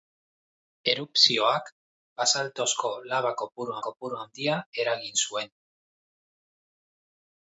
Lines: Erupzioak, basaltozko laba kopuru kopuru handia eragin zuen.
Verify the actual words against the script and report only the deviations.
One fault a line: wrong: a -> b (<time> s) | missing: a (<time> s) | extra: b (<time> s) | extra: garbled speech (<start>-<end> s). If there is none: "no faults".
no faults